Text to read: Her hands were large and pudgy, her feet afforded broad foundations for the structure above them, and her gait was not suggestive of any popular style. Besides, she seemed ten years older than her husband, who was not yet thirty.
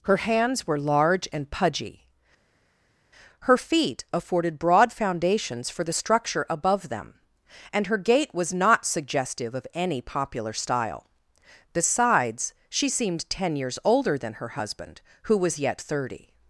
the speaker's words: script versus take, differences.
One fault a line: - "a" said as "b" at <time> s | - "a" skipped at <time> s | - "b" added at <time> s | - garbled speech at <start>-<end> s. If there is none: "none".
- "not" skipped at 15.6 s